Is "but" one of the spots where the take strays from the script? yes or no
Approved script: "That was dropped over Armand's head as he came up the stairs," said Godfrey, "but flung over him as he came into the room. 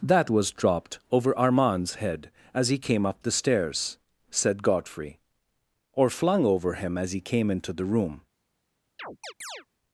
yes